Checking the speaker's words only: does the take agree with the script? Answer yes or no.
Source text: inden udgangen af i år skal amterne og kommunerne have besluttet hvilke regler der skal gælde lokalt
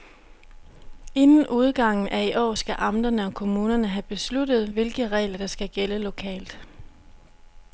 yes